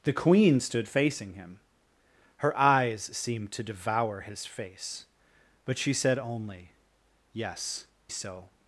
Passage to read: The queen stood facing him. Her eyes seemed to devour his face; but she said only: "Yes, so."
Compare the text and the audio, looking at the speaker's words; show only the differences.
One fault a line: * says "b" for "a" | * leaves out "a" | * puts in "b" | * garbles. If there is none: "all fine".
all fine